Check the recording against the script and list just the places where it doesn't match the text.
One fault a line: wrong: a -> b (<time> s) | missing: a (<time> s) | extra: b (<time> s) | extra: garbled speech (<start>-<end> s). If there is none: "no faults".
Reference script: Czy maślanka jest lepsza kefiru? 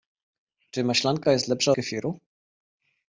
no faults